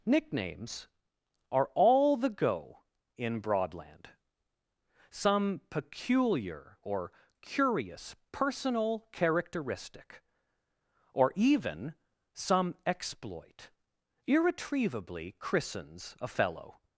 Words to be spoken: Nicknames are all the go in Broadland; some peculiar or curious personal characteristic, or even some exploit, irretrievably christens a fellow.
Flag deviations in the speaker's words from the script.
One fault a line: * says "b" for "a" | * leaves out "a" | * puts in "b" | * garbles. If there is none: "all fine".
all fine